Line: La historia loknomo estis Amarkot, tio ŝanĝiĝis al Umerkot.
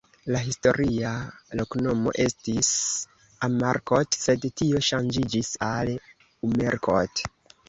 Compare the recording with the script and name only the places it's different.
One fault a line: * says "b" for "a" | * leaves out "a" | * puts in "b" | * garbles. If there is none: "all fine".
* puts in "sed"